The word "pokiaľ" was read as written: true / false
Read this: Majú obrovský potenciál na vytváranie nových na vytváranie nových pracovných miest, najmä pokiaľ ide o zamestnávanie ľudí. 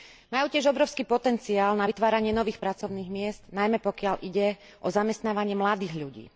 true